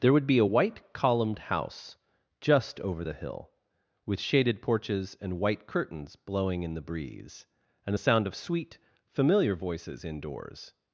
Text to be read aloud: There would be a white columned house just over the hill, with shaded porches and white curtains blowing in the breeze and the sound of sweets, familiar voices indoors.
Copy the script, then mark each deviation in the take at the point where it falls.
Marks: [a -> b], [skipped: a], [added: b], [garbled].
There would be a white columned house just over the hill, with shaded porches and white curtains blowing in the breeze and the sound of [sweets, -> sweet] familiar voices indoors.